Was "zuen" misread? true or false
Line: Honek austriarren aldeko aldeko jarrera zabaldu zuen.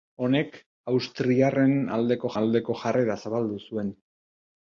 false